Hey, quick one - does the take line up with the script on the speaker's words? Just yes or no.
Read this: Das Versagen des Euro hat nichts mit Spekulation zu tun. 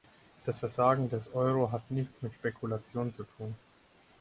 yes